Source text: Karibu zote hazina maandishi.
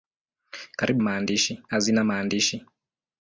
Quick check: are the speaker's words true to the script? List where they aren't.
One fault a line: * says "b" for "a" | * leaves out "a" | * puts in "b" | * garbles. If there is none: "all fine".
* says "maandishi" for "zote"